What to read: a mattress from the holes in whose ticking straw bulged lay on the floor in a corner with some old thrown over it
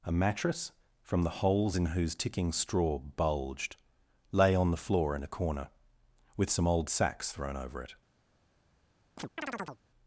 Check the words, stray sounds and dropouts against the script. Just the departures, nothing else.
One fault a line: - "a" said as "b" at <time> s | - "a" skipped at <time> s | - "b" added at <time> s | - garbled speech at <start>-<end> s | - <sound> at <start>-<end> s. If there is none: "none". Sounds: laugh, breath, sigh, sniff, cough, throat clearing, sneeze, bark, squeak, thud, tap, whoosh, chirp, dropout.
- "sacks" added at 6.9 s
- chirp at 9.2-9.8 s